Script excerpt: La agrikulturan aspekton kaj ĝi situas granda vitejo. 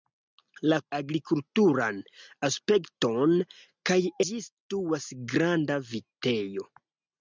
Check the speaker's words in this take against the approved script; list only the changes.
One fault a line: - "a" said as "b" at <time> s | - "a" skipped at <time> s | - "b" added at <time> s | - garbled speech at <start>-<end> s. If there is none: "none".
none